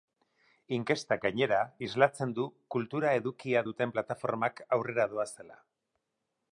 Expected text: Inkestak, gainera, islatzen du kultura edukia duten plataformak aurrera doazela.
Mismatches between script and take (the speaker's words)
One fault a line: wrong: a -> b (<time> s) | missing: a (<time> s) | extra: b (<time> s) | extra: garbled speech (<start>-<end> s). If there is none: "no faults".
no faults